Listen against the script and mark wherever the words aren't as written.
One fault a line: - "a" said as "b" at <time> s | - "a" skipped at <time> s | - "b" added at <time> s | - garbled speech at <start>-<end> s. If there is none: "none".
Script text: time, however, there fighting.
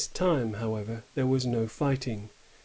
- "was no" added at 1.3 s